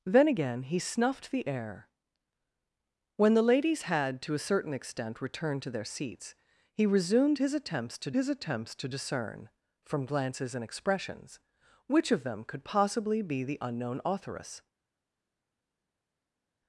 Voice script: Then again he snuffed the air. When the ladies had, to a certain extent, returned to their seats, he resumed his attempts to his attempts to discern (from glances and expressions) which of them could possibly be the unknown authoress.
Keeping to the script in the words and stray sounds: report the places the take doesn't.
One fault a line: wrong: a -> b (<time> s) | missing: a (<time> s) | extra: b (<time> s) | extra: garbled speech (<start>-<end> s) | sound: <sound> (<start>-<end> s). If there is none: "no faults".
no faults